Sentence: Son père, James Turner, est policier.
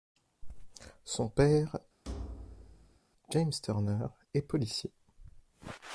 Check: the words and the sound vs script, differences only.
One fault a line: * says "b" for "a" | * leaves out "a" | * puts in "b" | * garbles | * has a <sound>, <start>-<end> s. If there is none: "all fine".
* has a thud, 2.0-3.0 s